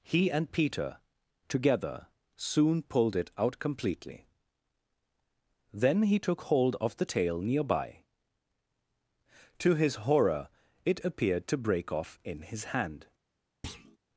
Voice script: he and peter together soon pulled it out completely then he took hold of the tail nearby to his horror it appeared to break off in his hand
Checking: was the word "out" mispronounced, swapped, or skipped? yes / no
no